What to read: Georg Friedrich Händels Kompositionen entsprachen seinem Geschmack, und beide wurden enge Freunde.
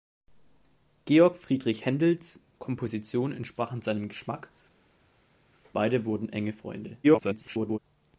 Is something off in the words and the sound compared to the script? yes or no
yes